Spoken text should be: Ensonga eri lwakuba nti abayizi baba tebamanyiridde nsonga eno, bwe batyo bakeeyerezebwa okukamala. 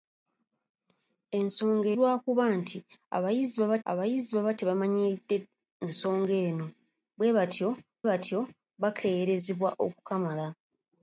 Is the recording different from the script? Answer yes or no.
yes